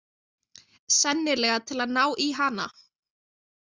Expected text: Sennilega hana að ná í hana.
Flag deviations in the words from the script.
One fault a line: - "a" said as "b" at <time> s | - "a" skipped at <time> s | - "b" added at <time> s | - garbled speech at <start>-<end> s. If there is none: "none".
- "hana" said as "til" at 1.7 s